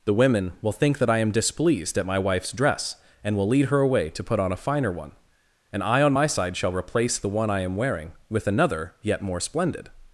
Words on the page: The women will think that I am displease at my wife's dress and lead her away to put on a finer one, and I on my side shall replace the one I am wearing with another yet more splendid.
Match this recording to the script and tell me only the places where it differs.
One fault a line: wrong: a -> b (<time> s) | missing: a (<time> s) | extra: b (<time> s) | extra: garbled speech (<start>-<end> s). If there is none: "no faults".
wrong: displease -> displeased (1.3 s)
extra: will (3.4 s)